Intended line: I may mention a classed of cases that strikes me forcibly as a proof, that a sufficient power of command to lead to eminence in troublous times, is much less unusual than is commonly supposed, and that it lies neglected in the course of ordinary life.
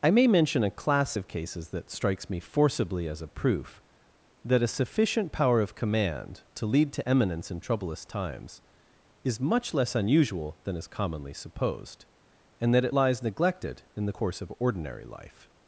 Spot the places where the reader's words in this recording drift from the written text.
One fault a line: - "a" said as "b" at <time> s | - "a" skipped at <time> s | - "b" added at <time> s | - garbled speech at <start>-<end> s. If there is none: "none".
- "classed" said as "class" at 0.7 s